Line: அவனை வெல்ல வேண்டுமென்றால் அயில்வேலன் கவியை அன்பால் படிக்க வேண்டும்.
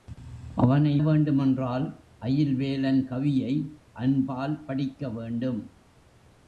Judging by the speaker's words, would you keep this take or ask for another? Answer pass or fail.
fail